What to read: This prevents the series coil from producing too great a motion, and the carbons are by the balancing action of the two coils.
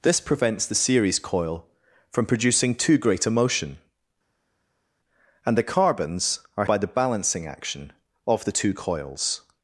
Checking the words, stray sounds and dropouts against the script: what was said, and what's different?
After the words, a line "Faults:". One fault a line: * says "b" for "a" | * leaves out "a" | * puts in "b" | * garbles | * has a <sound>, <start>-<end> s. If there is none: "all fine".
This prevents the series coil from producing too great a motion, and the carbons are by the balancing action of the two coils.
Faults:
all fine